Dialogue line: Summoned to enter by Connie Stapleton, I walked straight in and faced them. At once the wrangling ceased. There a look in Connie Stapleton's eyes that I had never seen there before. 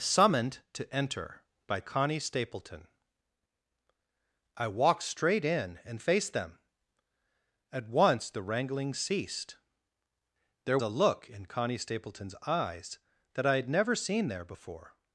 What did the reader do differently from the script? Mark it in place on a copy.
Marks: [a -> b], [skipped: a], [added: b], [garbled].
Summoned to enter by Connie Stapleton, I walked straight in and faced them. At once the wrangling ceased. There a look in Connie Stapleton's eyes that I had never seen there before.